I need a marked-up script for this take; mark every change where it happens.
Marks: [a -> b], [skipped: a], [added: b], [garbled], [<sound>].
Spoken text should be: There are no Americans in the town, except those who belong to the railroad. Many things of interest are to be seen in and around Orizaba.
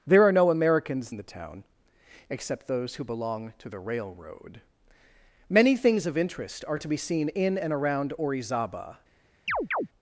There are no Americans in the town, except those who belong to the railroad. Many things of interest are to be seen in and around Orizaba. [chirp]